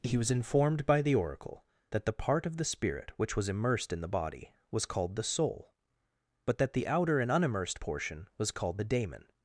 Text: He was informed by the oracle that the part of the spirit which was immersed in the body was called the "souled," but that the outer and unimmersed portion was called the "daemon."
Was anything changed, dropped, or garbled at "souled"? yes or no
yes